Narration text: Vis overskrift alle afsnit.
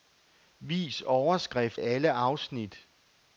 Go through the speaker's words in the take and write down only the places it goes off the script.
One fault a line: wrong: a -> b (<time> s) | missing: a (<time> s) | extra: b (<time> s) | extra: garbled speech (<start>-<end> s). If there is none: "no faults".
no faults